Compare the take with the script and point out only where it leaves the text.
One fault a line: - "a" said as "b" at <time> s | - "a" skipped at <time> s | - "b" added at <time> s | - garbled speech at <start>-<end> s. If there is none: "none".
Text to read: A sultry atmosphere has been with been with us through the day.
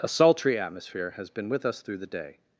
- "been with" skipped at 1.7 s